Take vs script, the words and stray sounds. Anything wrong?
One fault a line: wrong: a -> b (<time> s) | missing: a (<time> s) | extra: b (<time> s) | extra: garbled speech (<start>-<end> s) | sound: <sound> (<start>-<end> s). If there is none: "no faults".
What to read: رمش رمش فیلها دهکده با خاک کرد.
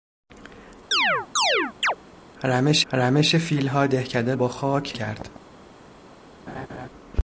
sound: chirp (0.9-2.0 s)
sound: laugh (6.5-6.9 s)